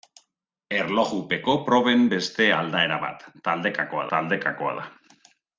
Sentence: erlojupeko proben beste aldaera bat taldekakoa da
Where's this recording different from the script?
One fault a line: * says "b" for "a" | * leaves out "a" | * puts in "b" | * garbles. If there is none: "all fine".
* puts in "taldekakoa"